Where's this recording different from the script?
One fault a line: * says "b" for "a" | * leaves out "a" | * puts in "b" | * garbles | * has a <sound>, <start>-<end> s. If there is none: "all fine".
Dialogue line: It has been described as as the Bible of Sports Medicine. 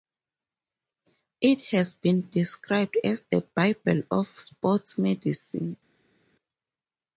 * leaves out "as"